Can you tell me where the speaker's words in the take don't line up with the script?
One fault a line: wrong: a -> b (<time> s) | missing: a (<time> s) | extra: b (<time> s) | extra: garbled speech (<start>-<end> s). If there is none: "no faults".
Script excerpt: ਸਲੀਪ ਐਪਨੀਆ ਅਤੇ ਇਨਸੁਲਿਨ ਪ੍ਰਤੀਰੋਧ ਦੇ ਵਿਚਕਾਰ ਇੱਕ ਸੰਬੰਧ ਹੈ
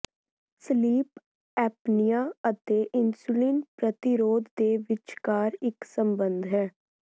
no faults